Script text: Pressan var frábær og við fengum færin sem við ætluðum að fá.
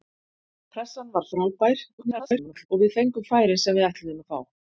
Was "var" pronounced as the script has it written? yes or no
yes